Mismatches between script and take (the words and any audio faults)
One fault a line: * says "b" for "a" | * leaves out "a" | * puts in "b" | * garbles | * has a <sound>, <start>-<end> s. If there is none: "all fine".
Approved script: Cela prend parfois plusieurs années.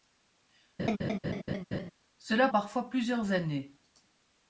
* has a laugh, 0.8-1.9 s
* leaves out "prend"